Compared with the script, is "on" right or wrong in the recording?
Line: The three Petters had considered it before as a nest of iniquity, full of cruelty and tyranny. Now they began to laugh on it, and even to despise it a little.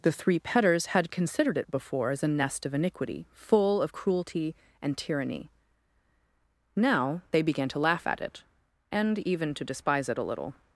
wrong